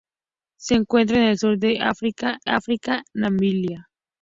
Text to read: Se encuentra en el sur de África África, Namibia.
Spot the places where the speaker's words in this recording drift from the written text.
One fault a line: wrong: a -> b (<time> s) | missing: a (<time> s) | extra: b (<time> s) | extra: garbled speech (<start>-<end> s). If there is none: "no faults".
no faults